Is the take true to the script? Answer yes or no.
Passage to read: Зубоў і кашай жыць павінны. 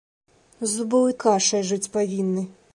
yes